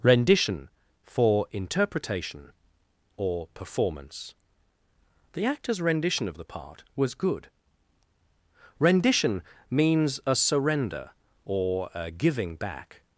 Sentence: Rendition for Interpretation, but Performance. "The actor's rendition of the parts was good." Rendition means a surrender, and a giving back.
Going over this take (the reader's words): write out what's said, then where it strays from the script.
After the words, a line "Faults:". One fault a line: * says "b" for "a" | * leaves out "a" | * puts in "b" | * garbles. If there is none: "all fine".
Rendition for Interpretation, or Performance. "The actor's rendition of the part was good." Rendition means a surrender, or a giving back.
Faults:
* says "or" for "but"
* says "part" for "parts"
* says "or" for "and"